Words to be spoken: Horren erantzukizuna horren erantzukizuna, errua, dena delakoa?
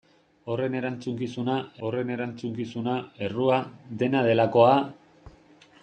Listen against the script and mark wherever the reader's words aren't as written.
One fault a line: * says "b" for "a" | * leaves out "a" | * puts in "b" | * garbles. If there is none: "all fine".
all fine